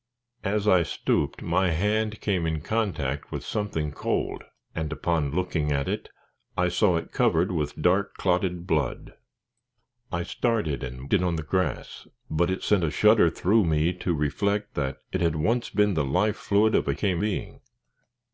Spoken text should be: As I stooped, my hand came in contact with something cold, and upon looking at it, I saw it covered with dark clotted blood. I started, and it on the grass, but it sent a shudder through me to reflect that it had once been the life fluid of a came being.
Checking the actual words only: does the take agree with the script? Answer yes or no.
yes